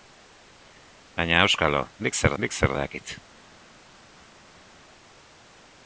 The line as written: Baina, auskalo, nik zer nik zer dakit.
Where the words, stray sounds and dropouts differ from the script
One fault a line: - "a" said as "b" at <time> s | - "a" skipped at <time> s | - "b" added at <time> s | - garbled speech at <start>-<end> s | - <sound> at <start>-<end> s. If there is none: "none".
none